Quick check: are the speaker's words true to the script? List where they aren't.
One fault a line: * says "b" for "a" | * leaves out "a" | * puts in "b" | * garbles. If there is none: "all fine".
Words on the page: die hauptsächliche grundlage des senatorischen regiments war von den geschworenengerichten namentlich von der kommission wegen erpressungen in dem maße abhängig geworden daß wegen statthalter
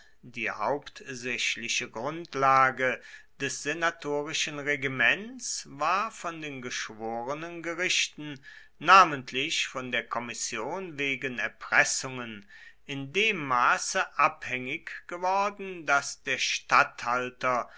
* says "der" for "wegen"